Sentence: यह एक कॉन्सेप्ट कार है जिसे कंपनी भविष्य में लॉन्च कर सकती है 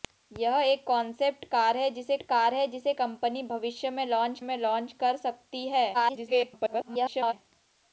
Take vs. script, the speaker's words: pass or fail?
fail